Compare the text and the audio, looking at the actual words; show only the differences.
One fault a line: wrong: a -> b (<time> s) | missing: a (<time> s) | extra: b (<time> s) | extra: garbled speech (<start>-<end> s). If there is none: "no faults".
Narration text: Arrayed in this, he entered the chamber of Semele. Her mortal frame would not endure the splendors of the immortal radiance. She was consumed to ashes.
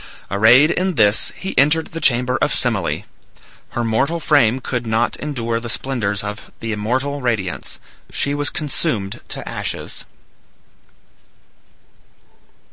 wrong: would -> could (4.6 s)